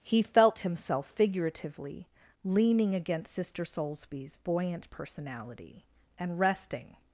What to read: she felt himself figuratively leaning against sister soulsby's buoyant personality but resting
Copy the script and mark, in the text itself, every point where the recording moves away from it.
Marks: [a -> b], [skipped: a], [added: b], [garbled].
[she -> he] felt himself figuratively leaning against sister soulsby's buoyant personality [but -> and] resting